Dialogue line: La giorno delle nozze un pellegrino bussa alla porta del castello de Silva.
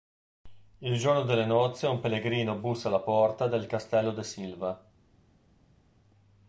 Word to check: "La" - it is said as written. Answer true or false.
false